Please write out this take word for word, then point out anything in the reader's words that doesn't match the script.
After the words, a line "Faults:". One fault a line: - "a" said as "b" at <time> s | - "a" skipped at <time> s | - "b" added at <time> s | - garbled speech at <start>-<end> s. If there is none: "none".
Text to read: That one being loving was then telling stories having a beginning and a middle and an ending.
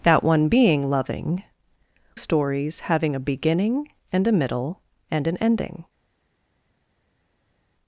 That one being loving stories having a beginning and a middle and an ending.
Faults:
- "was then telling" skipped at 1.4 s